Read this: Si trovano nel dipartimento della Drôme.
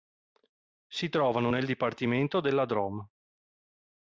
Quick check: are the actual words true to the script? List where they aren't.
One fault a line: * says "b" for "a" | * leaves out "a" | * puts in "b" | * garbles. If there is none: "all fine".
all fine